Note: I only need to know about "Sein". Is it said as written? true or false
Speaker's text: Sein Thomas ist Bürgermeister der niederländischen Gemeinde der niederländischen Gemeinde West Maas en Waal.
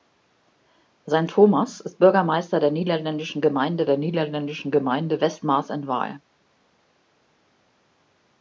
true